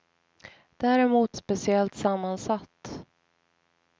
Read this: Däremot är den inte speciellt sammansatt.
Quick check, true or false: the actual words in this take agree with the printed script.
false